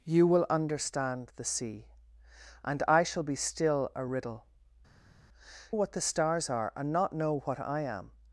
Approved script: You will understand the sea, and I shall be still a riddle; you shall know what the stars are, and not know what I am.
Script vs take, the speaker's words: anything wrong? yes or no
yes